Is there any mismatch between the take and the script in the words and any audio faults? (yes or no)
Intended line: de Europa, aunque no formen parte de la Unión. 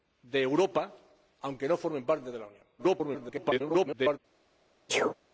yes